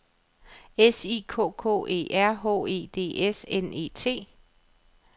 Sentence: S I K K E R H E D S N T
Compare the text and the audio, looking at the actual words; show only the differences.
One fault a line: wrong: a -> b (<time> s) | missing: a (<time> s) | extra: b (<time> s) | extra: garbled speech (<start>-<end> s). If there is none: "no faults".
extra: E (3.7 s)